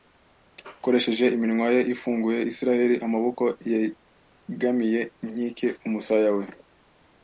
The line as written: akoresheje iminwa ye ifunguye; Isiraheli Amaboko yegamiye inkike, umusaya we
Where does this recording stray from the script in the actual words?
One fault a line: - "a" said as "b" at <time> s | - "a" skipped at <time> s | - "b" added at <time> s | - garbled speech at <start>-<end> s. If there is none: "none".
none